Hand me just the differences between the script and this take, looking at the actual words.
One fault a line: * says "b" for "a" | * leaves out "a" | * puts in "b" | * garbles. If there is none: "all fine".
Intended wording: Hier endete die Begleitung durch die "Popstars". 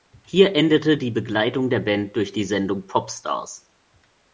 * puts in "der Band"
* puts in "Sendung"